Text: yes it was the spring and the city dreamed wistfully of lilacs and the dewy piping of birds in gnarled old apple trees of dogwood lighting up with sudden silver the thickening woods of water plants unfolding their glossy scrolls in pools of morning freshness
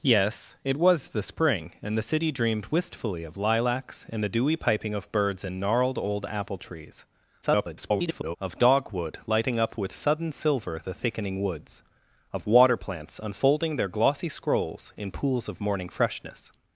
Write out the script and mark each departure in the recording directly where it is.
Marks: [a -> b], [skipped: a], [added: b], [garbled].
yes it was the spring and the city dreamed wistfully of lilacs and the dewy piping of birds in gnarled old apple trees [garbled] of dogwood lighting up with sudden silver the thickening woods of water plants unfolding their glossy scrolls in pools of morning freshness